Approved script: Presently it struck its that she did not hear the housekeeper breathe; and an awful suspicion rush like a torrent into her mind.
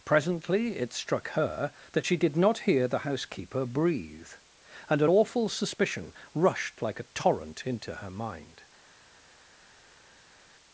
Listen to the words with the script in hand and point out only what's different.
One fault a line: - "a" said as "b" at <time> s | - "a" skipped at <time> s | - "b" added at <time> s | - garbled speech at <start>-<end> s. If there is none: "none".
- "its" said as "her" at 1.3 s
- "rush" said as "rushed" at 6.3 s